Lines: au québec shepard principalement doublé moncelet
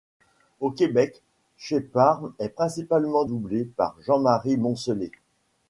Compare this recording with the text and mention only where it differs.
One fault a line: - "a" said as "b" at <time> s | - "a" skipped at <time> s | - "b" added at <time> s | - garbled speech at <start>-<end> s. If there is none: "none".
- "est" added at 2.4 s
- "par jean marie" added at 3.6 s